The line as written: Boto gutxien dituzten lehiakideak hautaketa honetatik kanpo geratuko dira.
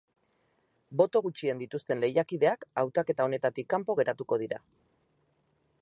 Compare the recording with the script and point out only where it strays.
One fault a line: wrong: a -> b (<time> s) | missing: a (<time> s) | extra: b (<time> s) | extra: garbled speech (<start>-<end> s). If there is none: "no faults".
no faults